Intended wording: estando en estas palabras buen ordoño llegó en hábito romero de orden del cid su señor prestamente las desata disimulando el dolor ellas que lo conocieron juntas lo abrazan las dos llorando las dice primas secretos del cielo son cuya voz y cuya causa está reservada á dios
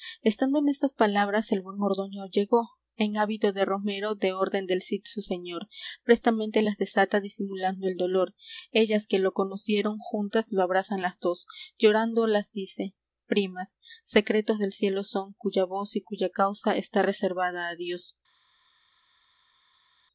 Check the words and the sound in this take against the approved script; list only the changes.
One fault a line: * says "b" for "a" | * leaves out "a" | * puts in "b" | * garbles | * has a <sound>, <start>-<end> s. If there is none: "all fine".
* puts in "el"
* puts in "de"